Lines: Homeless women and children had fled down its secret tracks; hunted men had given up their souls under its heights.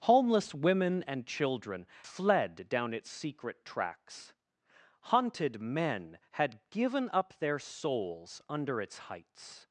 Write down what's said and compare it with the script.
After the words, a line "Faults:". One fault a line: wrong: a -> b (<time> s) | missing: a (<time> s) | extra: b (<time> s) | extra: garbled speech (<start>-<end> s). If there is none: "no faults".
Homeless women and children fled down its secret tracks; hunted men had given up their souls under its heights.
Faults:
missing: had (1.9 s)